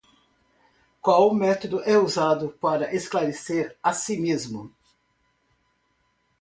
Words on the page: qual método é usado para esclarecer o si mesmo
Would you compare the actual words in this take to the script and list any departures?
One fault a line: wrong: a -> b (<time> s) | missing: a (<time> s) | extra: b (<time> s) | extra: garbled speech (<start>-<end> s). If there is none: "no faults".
wrong: o -> a (3.8 s)